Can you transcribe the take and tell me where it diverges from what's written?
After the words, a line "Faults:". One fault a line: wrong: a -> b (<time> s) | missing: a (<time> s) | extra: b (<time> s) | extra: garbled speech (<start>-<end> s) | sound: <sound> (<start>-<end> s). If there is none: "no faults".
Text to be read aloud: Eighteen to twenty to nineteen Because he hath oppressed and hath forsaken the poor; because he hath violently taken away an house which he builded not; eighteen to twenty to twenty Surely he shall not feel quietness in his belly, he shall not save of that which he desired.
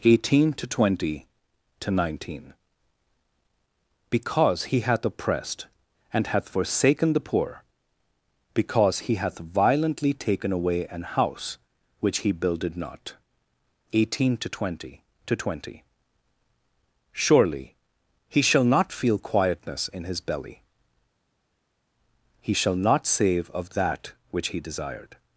Eighteen to twenty to nineteen Because he hath oppressed and hath forsaken the poor; because he hath violently taken away an house which he builded not; eighteen to twenty to twenty Surely he shall not feel quietness in his belly, he shall not save of that which he desired.
Faults:
no faults